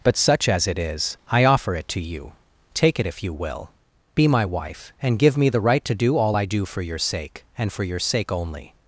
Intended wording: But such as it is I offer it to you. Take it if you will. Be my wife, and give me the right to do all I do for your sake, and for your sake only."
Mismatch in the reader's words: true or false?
false